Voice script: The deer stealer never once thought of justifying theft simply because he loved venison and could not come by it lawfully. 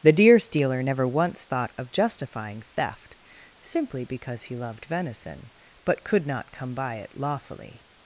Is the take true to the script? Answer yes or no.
no